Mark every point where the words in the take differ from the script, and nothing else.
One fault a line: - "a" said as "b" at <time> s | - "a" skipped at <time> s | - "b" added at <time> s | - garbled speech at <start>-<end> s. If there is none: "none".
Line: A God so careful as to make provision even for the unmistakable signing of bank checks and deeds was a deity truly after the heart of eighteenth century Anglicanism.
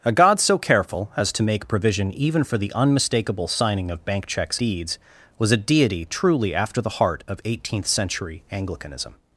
- "and" skipped at 4.6 s